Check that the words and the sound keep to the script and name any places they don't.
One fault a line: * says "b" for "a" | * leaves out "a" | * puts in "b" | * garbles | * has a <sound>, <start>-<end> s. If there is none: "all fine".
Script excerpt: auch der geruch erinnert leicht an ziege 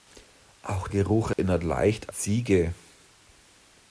* leaves out "der"
* has a dropout, 1.3-1.4 s
* leaves out "an"